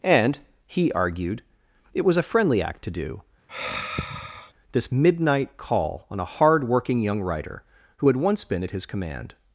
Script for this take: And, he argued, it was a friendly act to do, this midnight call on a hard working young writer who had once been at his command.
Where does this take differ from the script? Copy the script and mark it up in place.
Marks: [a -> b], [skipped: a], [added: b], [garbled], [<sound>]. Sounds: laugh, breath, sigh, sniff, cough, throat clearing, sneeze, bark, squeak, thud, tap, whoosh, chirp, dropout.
And, he argued, it was a friendly act to do, [sigh] this midnight call on a hard working young writer who had once been at his command.